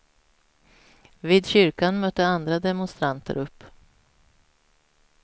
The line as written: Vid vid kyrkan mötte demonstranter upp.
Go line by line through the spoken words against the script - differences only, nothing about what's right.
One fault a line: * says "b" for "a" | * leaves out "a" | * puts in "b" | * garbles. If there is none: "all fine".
* leaves out "vid"
* puts in "andra"